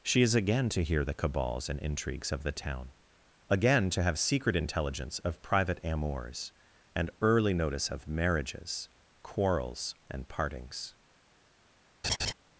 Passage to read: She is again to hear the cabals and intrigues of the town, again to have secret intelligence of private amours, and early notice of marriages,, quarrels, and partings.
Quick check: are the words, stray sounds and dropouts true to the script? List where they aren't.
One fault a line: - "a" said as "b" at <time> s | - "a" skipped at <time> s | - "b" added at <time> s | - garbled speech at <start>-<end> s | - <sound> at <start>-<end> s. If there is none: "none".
- laugh at 12.0-12.3 s